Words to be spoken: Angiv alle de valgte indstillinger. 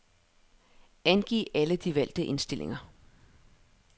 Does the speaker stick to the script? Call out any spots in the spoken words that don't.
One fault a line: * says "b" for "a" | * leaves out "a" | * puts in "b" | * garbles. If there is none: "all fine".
all fine